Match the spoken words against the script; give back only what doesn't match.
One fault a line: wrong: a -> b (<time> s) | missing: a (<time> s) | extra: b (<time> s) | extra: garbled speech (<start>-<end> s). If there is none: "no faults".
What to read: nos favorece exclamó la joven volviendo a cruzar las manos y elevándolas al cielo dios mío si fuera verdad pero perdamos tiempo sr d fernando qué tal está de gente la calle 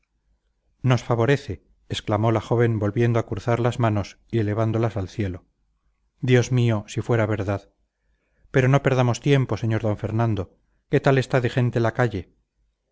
extra: no (8.7 s)